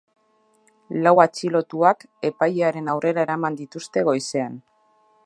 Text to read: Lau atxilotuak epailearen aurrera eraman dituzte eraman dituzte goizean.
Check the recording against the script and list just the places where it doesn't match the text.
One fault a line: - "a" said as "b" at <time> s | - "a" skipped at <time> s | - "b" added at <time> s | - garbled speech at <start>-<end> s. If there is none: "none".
- "eraman dituzte" skipped at 4.0 s